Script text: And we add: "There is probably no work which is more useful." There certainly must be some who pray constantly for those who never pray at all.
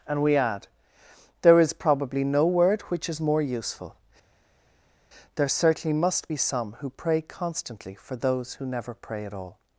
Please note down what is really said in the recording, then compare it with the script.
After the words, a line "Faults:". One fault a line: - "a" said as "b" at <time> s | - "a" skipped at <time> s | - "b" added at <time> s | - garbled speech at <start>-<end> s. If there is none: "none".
And we add: "There is probably no word which is more useful." There certainly must be some who pray constantly for those who never pray at all.
Faults:
- "work" said as "word" at 2.5 s